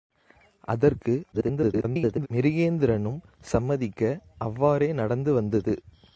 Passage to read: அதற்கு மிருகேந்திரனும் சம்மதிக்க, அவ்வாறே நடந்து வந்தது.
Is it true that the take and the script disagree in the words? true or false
true